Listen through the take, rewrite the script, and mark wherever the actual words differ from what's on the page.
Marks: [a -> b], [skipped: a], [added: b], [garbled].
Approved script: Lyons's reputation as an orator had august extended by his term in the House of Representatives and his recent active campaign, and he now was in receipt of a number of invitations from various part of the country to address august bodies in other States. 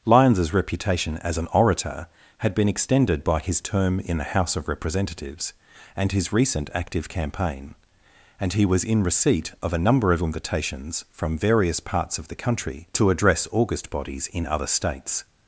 Lyons's reputation as an orator had [august -> been] extended by his term in the House of Representatives and his recent active campaign, and he [skipped: now] was in receipt of a number of invitations from various [part -> parts] of the country to address august bodies in other States.